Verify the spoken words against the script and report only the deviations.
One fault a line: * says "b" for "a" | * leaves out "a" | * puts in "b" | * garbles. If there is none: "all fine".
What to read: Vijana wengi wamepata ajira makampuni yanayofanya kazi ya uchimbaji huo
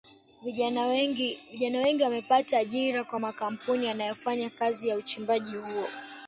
* puts in "kwa"